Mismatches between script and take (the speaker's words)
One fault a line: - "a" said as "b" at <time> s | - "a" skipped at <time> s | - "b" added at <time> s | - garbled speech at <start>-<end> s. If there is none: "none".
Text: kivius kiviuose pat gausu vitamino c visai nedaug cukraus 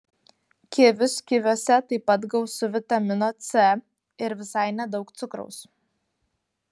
- "taip" added at 1.9 s
- "ir" added at 4.2 s